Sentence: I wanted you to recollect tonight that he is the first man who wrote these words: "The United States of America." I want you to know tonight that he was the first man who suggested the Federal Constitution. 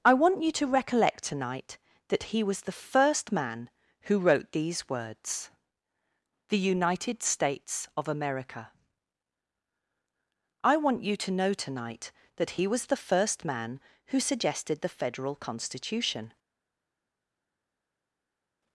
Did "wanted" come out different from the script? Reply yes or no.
yes